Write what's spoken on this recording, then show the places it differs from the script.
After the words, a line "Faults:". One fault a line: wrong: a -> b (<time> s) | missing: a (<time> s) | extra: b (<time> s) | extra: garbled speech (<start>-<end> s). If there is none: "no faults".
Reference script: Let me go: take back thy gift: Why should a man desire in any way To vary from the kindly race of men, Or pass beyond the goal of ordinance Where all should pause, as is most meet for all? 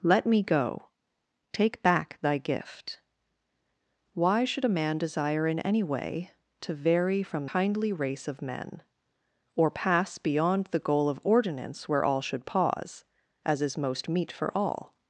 Let me go: take back thy gift: Why should a man desire in any way To vary from kindly race of men, Or pass beyond the goal of ordinance Where all should pause, as is most meet for all?
Faults:
missing: the (7.5 s)